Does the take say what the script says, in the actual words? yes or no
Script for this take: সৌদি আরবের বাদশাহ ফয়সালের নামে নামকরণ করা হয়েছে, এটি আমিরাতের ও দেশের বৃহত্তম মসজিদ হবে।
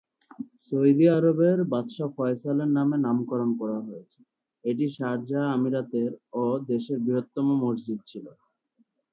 no